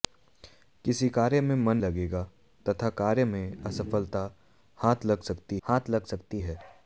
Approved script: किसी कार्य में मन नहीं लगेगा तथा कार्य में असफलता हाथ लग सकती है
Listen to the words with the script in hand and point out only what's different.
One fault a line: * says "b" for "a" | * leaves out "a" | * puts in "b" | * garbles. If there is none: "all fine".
* leaves out "नहीं"
* puts in "हाथ लग सकती"